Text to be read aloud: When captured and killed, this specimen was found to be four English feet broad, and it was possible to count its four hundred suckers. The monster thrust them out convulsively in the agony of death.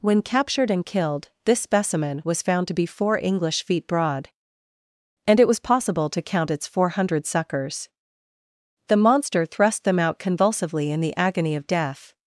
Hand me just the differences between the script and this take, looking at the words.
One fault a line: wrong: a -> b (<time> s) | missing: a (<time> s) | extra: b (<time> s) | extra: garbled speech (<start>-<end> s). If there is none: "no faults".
no faults